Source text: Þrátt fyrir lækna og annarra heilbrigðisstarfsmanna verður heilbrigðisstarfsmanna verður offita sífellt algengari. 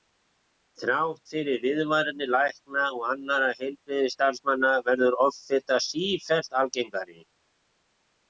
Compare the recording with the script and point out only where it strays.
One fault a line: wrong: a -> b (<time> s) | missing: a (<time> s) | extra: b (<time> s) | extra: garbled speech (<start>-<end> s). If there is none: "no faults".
extra: viðvaranir (1.6 s)
missing: heilbrigðisstarfsmanna verður (5.2 s)